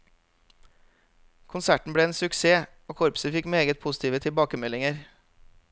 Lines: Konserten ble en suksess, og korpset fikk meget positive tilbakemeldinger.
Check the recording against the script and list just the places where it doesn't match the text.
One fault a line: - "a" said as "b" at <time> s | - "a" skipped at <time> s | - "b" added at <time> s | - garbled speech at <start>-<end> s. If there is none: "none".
none